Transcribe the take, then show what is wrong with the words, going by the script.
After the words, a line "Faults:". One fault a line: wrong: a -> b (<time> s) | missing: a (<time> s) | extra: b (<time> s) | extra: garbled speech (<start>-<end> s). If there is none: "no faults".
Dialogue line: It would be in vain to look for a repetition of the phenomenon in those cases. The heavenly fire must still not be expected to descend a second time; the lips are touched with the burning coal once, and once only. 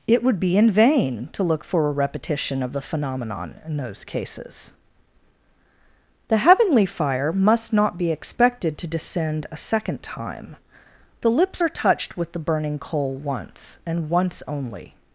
It would be in vain to look for a repetition of the phenomenon in those cases. The heavenly fire must not be expected to descend a second time; the lips are touched with the burning coal once, and once only.
Faults:
missing: still (7.7 s)